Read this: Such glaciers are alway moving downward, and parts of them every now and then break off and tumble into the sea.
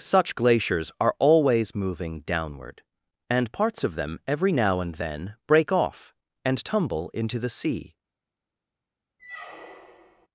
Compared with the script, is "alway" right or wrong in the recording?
wrong